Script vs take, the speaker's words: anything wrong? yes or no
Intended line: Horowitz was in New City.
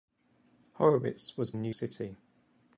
no